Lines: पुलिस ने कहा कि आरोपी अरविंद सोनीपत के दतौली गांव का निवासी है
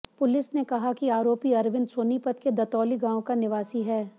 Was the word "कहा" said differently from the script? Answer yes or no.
no